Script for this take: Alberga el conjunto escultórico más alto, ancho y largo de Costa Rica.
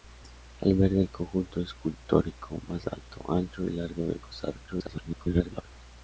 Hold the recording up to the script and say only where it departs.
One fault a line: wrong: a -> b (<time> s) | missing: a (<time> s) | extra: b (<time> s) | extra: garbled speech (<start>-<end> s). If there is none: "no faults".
extra: garbled speech (4.7-5.6 s)